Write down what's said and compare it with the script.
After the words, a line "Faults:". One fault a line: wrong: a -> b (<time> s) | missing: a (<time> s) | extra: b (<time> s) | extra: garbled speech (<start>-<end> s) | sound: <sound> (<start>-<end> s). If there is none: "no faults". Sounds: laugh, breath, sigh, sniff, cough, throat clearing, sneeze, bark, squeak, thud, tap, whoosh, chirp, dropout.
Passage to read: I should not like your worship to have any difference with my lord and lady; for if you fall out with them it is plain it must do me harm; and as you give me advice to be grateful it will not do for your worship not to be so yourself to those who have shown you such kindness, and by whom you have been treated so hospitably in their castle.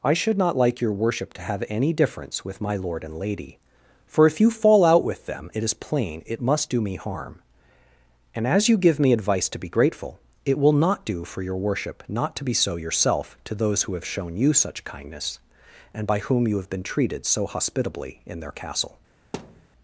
I should not like your worship to have any difference with my lord and lady; for if you fall out with them it is plain it must do me harm; and as you give me advice to be grateful it will not do for your worship not to be so yourself to those who have shown you such kindness, and by whom you have been treated so hospitably in their castle.
Faults:
sound: thud (19.3-19.7 s)